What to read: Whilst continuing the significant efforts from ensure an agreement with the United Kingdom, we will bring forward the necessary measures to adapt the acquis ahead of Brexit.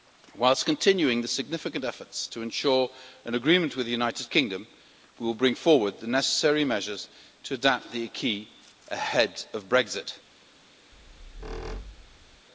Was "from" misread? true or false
true